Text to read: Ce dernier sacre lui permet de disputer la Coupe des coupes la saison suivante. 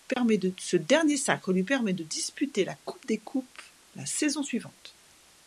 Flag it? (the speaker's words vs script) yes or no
no